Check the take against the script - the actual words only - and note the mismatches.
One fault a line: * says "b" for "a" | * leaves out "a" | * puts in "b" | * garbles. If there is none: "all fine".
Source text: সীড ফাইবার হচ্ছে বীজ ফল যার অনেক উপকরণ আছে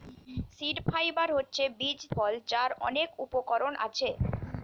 all fine